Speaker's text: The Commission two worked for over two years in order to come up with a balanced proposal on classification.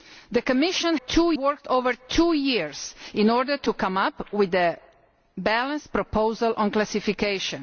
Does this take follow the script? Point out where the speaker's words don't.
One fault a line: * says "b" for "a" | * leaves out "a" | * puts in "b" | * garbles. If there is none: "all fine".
all fine